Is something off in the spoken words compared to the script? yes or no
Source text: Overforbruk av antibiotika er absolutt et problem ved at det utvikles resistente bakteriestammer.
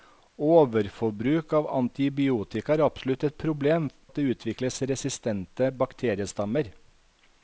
yes